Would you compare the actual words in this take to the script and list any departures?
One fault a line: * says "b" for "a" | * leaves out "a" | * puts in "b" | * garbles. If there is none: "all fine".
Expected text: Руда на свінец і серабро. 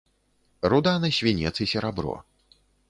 all fine